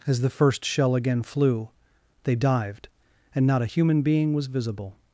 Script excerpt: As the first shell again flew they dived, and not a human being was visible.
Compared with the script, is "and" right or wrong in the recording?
right